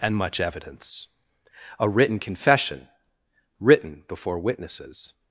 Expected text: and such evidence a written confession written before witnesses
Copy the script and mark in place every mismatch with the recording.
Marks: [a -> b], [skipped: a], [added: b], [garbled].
and [such -> much] evidence a written confession written before witnesses